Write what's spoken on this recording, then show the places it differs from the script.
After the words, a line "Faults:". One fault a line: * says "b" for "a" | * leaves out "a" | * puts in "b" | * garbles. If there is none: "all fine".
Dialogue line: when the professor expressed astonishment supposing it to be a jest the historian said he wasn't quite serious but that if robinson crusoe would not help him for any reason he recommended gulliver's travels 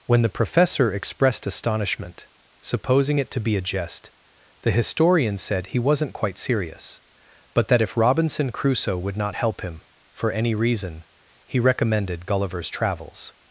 when the professor expressed astonishment supposing it to be a jest the historian said he wasn't quite serious but that if robinson crusoe would not help him for any reason he recommended gulliver's travels
Faults:
all fine